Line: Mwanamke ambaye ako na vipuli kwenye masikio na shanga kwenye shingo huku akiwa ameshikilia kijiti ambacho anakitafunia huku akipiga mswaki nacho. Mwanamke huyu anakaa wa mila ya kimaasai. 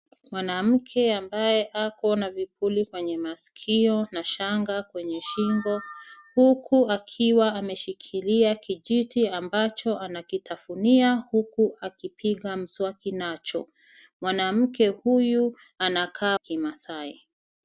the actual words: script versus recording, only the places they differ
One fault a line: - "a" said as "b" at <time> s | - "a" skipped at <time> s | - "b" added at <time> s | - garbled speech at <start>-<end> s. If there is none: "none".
- "wa mila ya" skipped at 16.4 s